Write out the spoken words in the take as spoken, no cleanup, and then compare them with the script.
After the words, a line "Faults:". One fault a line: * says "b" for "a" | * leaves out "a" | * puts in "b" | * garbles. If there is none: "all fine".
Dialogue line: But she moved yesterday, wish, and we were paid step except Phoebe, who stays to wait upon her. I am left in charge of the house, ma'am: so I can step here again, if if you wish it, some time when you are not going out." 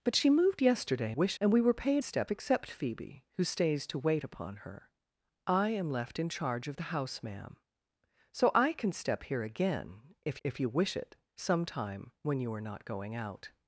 But she moved yesterday, wish, and we were paid step except Phoebe, who stays to wait upon her. I am left in charge of the house, ma'am: so I can step here again, if if you wish it, some time when you are not going out."
Faults:
all fine